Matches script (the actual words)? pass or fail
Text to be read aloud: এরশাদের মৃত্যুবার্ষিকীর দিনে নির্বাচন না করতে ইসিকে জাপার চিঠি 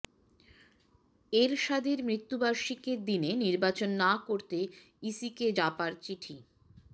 pass